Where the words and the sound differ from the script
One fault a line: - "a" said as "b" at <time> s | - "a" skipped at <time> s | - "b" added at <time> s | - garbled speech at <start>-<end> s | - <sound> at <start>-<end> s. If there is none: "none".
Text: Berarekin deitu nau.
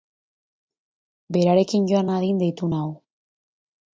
- "joan nadin" added at 1.9 s